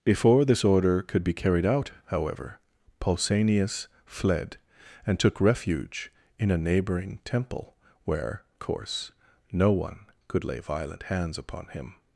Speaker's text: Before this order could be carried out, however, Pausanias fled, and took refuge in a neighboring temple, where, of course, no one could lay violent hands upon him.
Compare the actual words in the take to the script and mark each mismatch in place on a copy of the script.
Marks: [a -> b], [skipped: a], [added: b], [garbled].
Before this order could be carried out, however, Pausanias fled, and took refuge in a neighboring temple, where, [skipped: of] course, no one could lay violent hands upon him.